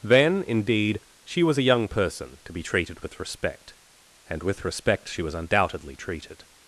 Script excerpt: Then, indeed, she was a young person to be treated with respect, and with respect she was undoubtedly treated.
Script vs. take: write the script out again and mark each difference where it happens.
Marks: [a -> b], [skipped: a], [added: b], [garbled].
Then, indeed, she was a young person to be treated with respect, and with respect she was undoubtedly treated.